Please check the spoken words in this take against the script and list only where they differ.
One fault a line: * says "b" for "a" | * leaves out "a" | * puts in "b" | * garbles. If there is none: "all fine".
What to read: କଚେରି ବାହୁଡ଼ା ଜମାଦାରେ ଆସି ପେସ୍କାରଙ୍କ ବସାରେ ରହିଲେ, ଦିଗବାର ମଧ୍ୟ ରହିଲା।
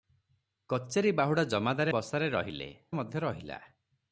* leaves out "ଆସି ପେସ୍କାରଙ୍କ"
* leaves out "ଦିଗବାର"